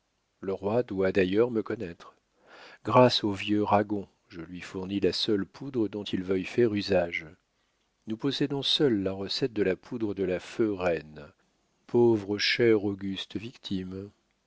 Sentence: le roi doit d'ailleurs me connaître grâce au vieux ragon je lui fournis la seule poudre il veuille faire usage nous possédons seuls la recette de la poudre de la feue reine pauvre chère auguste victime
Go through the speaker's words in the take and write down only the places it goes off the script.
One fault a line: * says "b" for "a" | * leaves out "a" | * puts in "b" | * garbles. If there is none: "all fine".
* puts in "dont"